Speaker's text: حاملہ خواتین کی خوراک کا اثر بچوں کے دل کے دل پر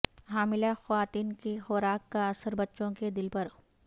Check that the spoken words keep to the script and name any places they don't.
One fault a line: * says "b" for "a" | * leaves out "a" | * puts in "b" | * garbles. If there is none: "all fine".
* leaves out "کے دل"